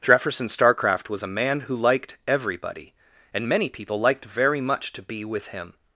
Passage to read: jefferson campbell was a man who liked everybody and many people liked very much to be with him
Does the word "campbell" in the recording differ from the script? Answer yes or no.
yes